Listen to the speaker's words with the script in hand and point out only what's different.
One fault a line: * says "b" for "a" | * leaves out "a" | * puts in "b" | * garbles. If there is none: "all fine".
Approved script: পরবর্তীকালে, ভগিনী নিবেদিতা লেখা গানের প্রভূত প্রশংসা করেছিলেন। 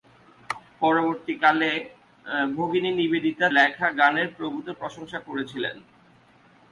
all fine